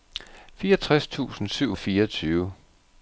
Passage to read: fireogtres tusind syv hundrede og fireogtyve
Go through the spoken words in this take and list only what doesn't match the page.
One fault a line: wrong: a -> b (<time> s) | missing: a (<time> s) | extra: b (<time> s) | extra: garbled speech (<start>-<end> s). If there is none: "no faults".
missing: hundrede (1.8 s)